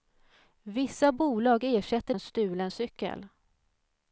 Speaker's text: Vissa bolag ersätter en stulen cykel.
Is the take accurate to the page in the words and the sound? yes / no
yes